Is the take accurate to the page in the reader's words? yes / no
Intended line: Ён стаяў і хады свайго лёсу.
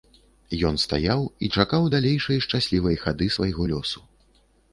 no